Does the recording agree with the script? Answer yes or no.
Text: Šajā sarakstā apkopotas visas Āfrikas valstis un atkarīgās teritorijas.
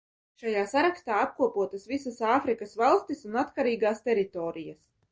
yes